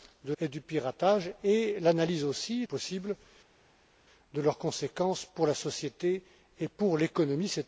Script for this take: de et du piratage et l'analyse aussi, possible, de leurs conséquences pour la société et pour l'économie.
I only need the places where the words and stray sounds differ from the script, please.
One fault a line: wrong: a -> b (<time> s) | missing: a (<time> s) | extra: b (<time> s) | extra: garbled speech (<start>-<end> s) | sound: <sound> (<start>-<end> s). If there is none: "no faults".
no faults